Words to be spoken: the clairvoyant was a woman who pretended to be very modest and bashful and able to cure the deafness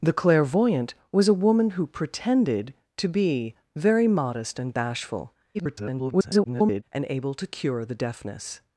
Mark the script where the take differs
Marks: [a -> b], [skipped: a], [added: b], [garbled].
the clairvoyant was a woman who pretended to be very modest and bashful [garbled] and able to cure the deafness